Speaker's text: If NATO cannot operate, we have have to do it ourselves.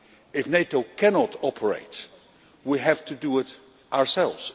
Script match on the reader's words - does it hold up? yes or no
no